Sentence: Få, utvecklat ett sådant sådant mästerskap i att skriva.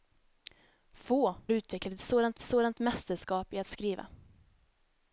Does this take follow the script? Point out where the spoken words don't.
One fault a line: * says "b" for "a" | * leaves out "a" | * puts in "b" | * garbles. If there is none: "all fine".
all fine